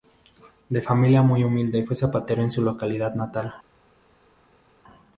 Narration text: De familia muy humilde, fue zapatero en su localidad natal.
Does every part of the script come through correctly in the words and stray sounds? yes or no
yes